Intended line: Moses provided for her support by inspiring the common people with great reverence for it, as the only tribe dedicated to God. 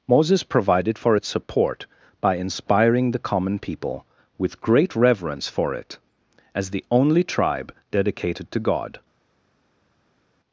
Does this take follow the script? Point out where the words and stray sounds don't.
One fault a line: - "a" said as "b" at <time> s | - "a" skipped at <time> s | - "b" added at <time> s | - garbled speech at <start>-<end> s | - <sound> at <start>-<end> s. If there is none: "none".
- "her" said as "its" at 1.1 s